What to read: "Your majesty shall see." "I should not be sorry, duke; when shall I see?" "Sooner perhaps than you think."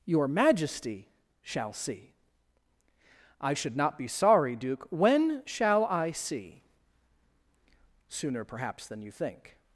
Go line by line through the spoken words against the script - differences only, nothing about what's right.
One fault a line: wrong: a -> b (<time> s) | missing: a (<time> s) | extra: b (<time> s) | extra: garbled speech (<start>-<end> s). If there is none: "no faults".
no faults